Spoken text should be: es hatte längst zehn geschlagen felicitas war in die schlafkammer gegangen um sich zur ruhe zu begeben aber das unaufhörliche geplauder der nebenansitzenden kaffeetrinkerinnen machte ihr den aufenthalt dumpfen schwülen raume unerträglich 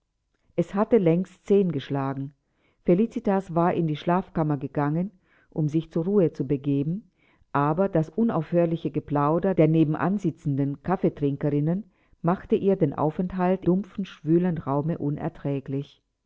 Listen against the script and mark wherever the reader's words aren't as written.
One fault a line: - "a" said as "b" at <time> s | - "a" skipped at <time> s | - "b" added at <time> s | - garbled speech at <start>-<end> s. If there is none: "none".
none